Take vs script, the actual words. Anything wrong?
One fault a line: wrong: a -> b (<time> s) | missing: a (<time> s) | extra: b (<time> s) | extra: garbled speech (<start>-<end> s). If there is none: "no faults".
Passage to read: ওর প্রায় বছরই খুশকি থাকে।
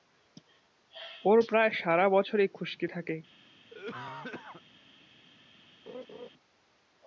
extra: সারা (1.7 s)